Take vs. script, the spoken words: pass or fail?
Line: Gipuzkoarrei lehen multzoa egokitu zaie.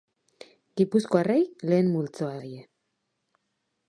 fail